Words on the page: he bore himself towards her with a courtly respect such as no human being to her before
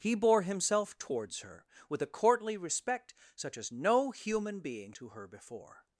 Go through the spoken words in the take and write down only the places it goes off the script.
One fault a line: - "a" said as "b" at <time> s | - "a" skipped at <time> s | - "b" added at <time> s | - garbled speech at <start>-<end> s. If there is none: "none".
none